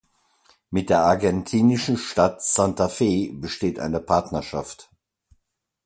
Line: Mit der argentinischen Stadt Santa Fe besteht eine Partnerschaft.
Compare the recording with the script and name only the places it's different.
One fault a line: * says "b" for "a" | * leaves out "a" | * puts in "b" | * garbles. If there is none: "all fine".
all fine